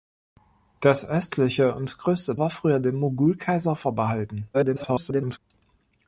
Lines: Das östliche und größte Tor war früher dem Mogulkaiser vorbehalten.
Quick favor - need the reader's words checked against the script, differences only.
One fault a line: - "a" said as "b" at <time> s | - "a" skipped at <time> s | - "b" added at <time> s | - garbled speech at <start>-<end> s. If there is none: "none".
- "Tor" skipped at 2.4 s
- garbled speech at 4.5-5.4 s